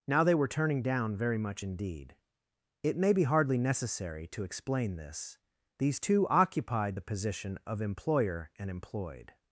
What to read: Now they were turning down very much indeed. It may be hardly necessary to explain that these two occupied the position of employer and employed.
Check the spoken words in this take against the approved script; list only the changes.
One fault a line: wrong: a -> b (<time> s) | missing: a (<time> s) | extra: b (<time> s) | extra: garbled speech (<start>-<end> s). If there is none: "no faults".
wrong: that -> this (5.0 s)